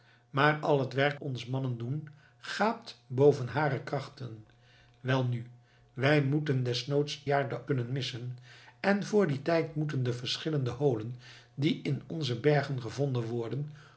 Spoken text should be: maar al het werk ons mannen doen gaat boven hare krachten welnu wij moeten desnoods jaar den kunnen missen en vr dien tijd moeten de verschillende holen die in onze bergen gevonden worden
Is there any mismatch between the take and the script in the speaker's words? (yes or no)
no